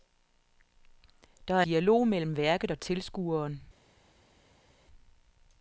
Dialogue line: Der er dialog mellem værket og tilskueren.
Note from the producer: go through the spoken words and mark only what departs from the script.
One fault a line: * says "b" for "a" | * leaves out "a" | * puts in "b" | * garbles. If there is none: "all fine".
all fine